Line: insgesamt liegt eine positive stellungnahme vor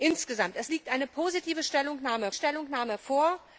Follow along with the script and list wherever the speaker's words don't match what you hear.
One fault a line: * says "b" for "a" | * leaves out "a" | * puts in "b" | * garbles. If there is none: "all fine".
* puts in "stellungnahme"